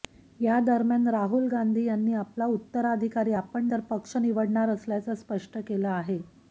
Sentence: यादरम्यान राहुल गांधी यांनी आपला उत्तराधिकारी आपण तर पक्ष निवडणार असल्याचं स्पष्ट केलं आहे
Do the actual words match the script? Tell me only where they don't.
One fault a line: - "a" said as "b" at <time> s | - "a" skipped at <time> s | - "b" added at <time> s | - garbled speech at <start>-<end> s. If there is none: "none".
none